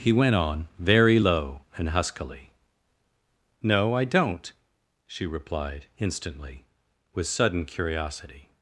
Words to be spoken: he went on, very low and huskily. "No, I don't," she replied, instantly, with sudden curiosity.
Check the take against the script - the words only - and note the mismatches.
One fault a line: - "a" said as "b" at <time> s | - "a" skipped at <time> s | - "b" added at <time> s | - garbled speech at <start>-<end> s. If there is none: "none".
none